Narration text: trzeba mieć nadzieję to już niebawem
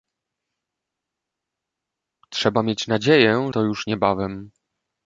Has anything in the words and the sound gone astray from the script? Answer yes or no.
no